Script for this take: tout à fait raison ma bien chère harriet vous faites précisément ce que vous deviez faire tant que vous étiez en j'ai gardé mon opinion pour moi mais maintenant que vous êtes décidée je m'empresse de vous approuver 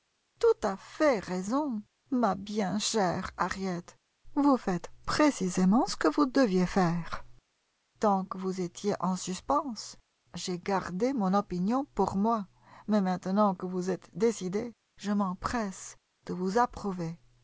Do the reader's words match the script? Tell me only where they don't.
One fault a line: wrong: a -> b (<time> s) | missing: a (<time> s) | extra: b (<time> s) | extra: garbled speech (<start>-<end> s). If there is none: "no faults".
extra: suspens (9.2 s)